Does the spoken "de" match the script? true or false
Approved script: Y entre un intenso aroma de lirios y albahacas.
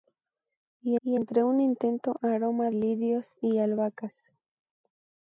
false